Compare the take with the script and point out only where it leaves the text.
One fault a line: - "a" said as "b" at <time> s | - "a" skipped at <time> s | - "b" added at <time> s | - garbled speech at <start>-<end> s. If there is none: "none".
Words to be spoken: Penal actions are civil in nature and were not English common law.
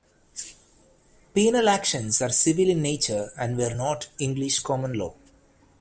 none